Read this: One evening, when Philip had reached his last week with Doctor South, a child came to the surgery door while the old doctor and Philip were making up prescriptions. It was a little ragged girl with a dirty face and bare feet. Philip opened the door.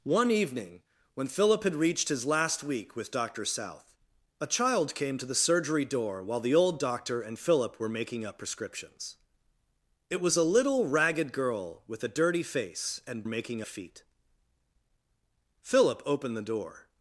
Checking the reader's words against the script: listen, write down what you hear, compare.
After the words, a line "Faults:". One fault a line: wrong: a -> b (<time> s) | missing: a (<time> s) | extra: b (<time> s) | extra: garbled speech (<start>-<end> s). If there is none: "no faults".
One evening, when Philip had reached his last week with Doctor South, a child came to the surgery door while the old doctor and Philip were making up prescriptions. It was a little ragged girl with a dirty face and making feet. Philip opened the door.
Faults:
wrong: bare -> making (13.3 s)